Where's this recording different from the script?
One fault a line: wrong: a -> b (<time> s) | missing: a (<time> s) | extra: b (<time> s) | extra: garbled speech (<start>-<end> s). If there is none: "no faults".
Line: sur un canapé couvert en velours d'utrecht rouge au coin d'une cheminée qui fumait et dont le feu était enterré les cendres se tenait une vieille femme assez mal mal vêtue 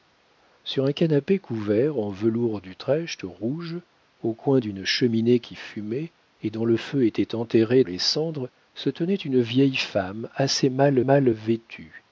no faults